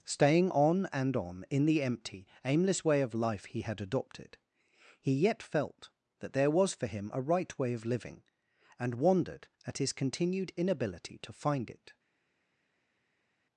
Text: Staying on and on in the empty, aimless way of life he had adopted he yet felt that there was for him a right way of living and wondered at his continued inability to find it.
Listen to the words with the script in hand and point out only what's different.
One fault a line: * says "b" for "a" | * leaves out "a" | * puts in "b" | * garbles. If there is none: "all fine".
all fine